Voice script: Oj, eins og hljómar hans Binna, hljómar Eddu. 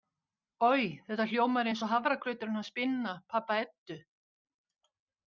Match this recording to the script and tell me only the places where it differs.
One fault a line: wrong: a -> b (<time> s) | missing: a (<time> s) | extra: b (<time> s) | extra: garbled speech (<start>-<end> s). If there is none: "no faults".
extra: þetta hljómar (1.1 s)
wrong: hljómar -> hafragrauturinn (1.9 s)
wrong: hljómar -> pabba (3.3 s)